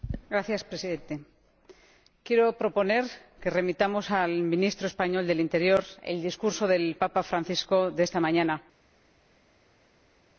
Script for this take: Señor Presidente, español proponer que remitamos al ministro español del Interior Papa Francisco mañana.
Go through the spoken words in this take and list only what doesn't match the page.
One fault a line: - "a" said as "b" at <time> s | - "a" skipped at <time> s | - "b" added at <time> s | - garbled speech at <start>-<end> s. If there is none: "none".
- "español" said as "quiero" at 2.2 s
- "el discurso del" added at 6.0 s
- "de esta" added at 7.9 s